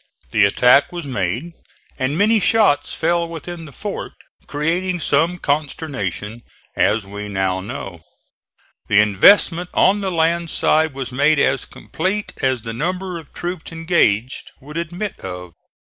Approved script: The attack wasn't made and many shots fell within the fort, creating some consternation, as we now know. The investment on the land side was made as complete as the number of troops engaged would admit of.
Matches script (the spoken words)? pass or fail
fail